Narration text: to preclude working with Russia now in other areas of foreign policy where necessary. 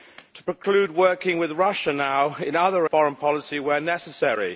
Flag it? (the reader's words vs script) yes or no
yes